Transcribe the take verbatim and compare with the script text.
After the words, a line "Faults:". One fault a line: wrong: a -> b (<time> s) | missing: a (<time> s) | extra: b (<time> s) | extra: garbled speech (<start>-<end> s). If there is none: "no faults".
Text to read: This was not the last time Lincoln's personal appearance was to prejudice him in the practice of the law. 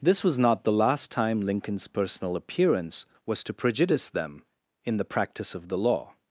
This was not the last time Lincoln's personal appearance was to prejudice them in the practice of the law.
Faults:
wrong: him -> them (4.1 s)